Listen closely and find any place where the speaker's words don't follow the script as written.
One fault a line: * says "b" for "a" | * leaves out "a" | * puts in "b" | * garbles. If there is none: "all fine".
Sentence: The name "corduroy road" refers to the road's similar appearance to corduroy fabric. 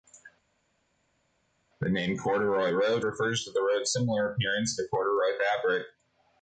all fine